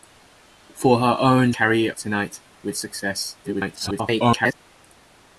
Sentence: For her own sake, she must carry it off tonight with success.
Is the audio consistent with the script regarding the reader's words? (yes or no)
no